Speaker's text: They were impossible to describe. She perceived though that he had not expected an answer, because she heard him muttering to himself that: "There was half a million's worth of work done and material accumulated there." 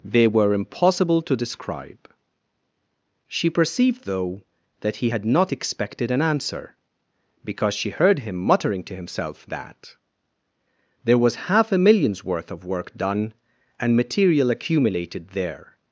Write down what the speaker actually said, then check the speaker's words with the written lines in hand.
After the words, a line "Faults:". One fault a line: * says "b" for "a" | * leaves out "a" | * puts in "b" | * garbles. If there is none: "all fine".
They were impossible to describe. She perceived though that he had not expected an answer, because she heard him muttering to himself that: "There was half a million's worth of work done and material accumulated there."
Faults:
all fine